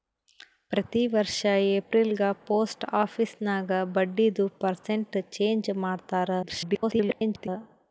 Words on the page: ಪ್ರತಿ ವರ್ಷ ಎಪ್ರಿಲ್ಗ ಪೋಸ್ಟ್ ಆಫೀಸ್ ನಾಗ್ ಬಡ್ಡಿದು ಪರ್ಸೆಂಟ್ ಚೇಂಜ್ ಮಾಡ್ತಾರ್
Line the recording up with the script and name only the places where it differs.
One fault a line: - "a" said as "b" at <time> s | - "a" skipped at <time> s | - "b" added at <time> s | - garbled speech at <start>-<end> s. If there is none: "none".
- garbled speech at 6.4-7.5 s